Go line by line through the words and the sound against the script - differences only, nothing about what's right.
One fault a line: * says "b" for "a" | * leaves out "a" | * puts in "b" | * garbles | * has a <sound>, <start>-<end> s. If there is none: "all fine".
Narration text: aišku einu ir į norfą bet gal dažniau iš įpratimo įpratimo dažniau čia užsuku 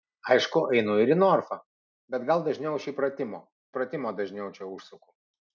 all fine